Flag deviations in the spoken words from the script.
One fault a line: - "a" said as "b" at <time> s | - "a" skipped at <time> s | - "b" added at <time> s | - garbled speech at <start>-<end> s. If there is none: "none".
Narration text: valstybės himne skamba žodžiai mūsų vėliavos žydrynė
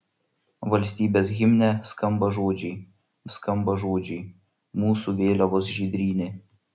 - "skamba žodžiai" added at 3.4 s